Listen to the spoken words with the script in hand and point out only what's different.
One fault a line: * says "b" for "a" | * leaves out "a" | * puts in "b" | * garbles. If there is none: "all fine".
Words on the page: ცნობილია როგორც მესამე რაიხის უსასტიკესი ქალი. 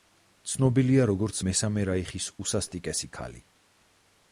all fine